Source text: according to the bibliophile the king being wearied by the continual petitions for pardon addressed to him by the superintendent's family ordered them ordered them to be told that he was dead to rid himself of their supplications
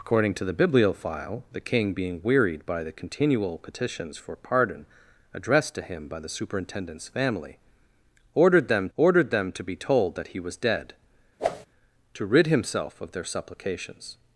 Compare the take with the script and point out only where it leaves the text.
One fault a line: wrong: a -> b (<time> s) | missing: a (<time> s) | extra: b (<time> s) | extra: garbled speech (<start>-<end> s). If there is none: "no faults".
no faults